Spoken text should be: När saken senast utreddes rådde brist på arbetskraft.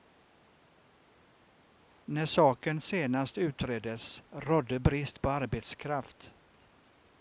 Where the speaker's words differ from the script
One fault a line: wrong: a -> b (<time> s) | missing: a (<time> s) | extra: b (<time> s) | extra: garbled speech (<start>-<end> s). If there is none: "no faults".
no faults